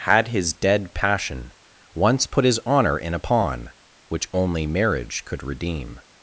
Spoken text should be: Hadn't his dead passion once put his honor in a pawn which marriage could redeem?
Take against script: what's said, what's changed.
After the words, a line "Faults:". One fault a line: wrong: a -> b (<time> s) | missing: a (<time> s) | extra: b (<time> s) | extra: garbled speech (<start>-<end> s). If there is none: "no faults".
Had his dead passion once put his honor in a pawn which only marriage could redeem?
Faults:
wrong: Hadn't -> Had (0.1 s)
extra: only (4.3 s)